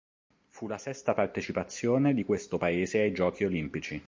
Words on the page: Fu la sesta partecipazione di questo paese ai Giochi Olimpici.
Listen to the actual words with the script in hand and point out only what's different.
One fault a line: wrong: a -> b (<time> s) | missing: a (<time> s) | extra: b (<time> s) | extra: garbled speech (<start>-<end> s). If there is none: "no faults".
no faults